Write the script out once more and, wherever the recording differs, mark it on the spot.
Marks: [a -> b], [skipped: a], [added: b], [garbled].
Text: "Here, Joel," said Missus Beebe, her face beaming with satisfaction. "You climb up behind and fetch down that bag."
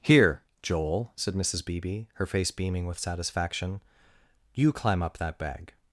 "Here, Joel," said Missus Beebe, her face beaming with satisfaction. "You climb up [skipped: behind and fetch down] that bag."